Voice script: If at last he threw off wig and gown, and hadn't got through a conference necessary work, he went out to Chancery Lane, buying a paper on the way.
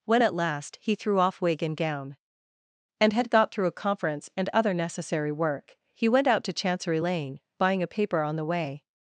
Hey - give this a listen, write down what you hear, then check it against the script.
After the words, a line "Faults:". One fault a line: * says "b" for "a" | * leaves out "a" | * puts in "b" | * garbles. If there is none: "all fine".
When at last he threw off wig and gown, and had got through a conference and other necessary work, he went out to Chancery Lane, buying a paper on the way.
Faults:
* says "When" for "If"
* says "had" for "hadn't"
* puts in "and other"